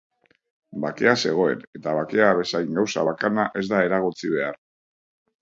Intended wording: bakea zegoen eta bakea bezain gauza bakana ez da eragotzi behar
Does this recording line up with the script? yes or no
yes